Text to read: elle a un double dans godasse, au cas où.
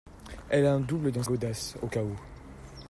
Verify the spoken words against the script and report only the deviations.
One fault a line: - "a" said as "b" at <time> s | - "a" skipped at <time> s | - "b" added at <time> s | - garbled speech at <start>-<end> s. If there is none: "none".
none